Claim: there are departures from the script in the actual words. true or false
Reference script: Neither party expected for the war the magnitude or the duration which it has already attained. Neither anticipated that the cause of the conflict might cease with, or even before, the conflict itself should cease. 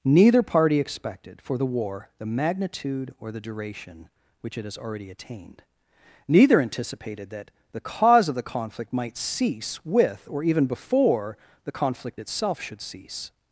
false